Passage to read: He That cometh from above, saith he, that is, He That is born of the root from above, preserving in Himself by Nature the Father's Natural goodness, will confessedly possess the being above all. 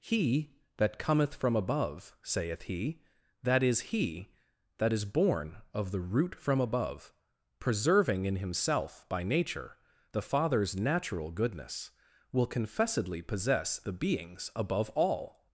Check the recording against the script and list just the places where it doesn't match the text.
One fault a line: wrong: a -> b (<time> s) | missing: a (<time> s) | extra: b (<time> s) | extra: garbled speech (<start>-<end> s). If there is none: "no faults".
wrong: being -> beings (13.9 s)